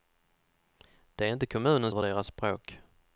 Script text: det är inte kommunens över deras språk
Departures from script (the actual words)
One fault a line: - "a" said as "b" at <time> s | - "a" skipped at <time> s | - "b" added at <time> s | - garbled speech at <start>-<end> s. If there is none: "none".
none